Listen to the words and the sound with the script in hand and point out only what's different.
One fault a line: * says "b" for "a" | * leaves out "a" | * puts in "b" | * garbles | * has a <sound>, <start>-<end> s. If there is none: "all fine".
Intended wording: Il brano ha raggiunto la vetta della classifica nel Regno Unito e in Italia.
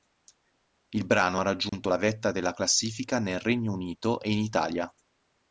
* has a dropout, 1.7-1.7 s